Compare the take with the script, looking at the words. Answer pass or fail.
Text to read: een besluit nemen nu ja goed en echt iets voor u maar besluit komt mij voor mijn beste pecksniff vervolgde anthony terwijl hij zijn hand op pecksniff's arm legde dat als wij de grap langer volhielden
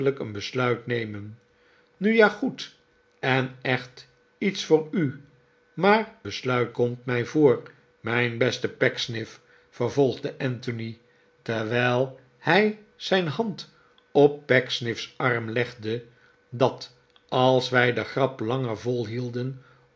pass